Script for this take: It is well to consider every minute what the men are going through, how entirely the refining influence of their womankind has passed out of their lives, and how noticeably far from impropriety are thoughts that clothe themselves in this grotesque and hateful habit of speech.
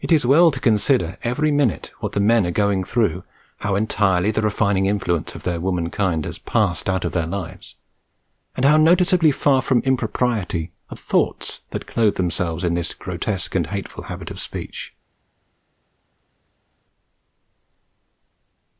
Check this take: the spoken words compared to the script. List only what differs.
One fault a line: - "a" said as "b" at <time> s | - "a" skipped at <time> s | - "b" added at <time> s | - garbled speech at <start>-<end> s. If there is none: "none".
none